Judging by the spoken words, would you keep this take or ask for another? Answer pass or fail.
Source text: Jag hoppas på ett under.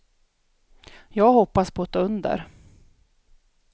pass